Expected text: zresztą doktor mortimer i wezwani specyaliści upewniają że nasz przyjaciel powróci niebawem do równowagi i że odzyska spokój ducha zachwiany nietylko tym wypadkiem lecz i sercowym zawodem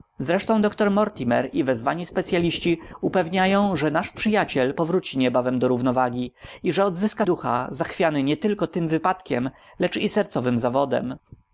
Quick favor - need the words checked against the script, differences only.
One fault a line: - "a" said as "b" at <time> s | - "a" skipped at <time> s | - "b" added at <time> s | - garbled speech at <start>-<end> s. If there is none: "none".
- "spokój" skipped at 7.3 s